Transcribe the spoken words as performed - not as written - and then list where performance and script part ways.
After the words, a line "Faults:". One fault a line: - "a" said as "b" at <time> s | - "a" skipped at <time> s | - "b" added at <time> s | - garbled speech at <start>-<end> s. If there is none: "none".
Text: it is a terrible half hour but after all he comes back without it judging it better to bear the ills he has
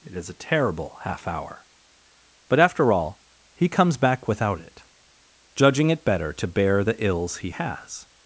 it is a terrible half hour but after all he comes back without it judging it better to bear the ills he has
Faults:
none